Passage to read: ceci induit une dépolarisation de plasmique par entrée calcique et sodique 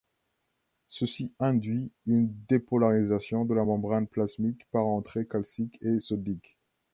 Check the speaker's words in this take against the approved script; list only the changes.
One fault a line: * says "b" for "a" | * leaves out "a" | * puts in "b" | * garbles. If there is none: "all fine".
* puts in "la membrane"